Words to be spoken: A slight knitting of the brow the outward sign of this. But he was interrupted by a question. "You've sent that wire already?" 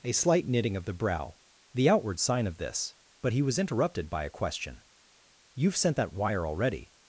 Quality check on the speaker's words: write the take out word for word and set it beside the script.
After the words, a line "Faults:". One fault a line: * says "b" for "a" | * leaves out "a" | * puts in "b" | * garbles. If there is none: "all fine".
A slight knitting of the brow the outward sign of this. But he was interrupted by a question. "You've sent that wire already?"
Faults:
all fine